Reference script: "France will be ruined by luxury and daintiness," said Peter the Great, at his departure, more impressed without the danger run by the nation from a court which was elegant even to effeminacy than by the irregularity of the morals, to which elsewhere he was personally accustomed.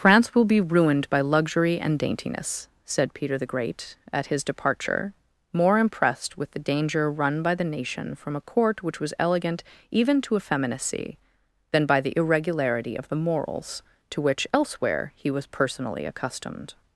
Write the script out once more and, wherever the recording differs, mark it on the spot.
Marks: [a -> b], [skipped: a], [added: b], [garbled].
"France will be ruined by luxury and daintiness," said Peter the Great, at his departure, more impressed [without -> with] the danger run by the nation from a court which was elegant even to effeminacy than by the irregularity of the morals, to which elsewhere he was personally accustomed.